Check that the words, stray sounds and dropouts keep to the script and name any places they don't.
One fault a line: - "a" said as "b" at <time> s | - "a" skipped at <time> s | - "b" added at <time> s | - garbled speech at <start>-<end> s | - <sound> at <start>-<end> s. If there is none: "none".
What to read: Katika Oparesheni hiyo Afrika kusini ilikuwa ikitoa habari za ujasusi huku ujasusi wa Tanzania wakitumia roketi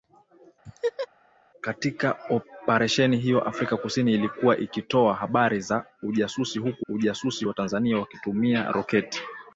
- laugh at 0.6-1.1 s